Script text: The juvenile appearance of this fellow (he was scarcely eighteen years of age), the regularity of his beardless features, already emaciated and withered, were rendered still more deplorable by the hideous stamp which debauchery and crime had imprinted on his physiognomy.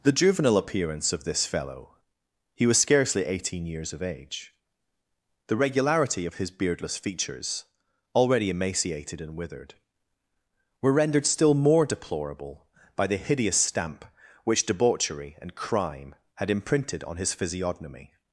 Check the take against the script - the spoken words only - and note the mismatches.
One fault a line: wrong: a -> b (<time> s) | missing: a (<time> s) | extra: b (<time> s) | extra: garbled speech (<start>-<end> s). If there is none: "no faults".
no faults